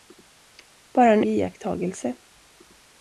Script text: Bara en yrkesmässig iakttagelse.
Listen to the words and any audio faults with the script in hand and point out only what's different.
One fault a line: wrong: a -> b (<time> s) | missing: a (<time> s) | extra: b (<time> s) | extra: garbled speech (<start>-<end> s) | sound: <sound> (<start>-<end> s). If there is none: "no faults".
missing: yrkesmässig (1.2 s)